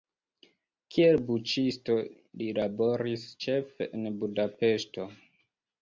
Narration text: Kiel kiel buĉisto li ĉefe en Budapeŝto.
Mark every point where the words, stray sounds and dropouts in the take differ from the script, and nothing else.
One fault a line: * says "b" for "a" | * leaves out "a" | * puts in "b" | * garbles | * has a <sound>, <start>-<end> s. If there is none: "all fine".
* leaves out "kiel"
* puts in "laboris"